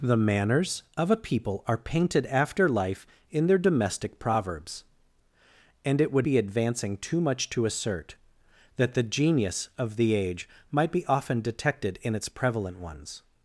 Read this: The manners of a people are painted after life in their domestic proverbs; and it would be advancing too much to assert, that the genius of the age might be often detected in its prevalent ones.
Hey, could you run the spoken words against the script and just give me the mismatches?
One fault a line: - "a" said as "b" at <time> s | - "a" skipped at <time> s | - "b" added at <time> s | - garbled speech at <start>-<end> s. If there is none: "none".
none